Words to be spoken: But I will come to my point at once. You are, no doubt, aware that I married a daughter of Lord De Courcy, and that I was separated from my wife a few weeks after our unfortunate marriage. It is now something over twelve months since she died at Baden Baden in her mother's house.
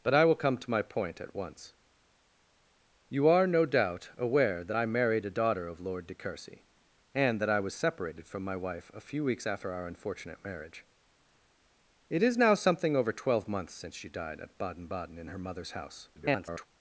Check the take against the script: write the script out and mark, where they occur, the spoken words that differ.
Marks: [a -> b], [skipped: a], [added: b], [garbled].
But I will come to my point at once. You are, no doubt, aware that I married a daughter of Lord De Courcy, and that I was separated from my wife a few weeks after our unfortunate marriage. It is now something over twelve months since she died at Baden Baden in her mother's house. [garbled]